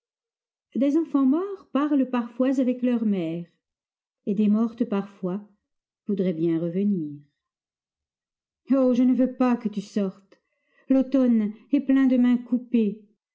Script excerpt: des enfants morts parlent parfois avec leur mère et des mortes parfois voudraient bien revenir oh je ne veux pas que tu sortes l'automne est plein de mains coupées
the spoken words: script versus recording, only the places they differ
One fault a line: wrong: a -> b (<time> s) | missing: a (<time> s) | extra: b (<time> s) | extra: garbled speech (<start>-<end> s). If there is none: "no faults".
no faults